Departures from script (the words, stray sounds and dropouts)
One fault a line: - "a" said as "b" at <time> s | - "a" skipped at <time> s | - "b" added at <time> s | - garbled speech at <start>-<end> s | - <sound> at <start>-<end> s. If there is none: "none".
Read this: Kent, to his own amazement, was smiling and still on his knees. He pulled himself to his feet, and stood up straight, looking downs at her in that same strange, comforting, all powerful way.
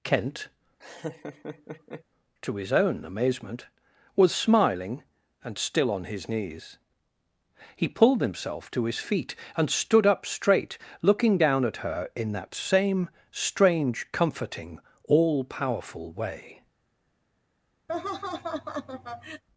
- laugh at 0.8-2.0 s
- "downs" said as "down" at 11.4 s
- laugh at 17.9-19.4 s